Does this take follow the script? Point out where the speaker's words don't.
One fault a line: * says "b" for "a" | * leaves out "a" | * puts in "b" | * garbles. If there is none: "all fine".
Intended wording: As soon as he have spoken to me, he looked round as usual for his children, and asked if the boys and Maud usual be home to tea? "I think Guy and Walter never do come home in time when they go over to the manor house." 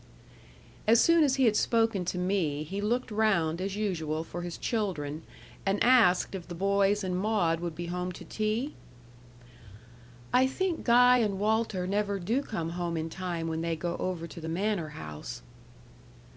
* says "had" for "have"
* says "would" for "usual"